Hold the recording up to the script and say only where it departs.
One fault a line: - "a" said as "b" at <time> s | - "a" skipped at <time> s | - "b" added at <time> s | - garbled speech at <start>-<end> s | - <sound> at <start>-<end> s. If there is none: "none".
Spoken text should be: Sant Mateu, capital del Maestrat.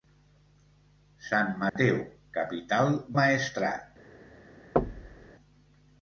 - dropout at 1.7-1.8 s
- "del" skipped at 3.0 s
- thud at 4.8-5.3 s